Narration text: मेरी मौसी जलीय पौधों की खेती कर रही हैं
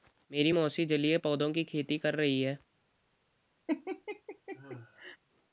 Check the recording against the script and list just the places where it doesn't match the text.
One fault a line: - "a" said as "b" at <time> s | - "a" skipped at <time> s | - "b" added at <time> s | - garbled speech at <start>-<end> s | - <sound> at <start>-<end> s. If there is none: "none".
- laugh at 3.7-5.2 s